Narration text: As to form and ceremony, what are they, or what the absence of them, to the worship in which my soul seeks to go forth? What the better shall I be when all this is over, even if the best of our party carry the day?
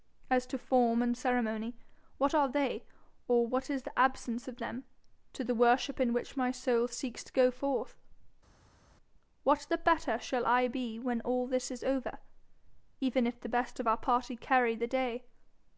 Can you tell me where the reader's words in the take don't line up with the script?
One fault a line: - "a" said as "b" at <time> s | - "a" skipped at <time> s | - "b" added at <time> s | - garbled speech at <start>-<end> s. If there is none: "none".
- "is" added at 3.7 s